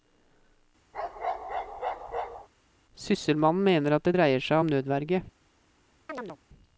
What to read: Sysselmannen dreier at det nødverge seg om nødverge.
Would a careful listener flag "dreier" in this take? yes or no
yes